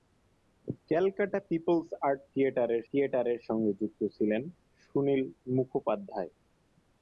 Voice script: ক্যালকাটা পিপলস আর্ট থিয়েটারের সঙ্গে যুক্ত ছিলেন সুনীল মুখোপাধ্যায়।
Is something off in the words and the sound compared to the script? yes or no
yes